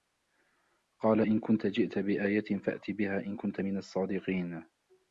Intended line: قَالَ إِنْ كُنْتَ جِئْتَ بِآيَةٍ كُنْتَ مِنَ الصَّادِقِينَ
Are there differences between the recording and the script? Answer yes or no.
yes